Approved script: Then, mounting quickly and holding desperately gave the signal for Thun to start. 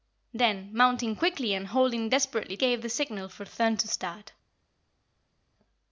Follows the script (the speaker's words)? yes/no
yes